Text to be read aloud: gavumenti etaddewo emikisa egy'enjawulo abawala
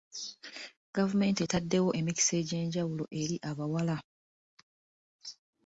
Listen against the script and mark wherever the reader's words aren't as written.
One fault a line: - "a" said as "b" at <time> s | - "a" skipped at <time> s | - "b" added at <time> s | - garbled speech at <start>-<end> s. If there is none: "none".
- "eri" added at 3.2 s